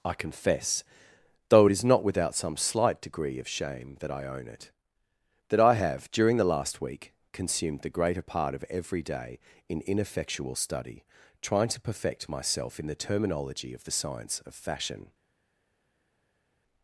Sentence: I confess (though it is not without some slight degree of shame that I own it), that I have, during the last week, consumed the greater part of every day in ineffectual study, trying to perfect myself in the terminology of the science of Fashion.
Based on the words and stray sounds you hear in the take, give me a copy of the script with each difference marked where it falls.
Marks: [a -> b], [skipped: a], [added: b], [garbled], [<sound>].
I confess (though it is not without some slight degree of shame that I own it), that I have, during the last week, consumed the greater part of every day in ineffectual study, trying to perfect myself in the terminology of the science of Fashion.